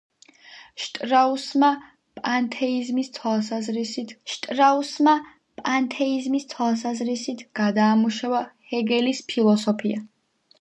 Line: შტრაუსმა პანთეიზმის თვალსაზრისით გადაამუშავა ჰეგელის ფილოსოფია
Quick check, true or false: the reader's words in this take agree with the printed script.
false